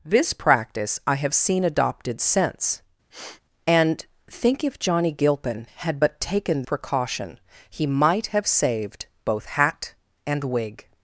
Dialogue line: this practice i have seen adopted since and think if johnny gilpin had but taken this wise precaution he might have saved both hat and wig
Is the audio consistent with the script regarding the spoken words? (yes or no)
no